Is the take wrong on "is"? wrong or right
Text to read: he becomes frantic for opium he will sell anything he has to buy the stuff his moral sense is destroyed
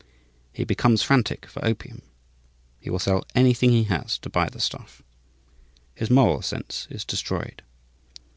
right